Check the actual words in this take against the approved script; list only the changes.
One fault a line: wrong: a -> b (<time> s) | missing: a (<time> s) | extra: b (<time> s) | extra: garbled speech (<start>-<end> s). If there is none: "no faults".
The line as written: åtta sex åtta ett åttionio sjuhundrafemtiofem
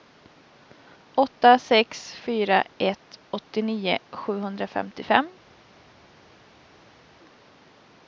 wrong: åtta -> fyra (2.1 s)